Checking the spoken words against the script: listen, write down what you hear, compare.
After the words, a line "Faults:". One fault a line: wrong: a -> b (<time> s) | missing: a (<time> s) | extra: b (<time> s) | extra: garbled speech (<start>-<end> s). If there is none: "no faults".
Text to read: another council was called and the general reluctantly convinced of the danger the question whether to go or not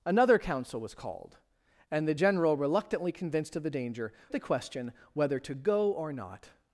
another council was called and the general reluctantly convinced of the danger the question whether to go or not
Faults:
no faults